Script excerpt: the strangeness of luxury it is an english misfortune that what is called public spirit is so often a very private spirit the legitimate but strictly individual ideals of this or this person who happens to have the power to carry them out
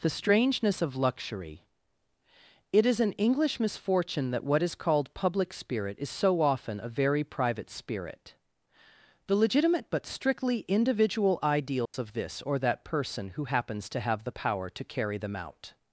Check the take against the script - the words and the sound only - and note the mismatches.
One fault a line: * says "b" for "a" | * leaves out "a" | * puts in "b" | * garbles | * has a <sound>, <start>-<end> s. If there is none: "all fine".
* has a dropout, 11.9-11.9 s
* says "that" for "this"